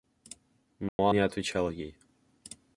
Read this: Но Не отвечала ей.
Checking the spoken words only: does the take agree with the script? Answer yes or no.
yes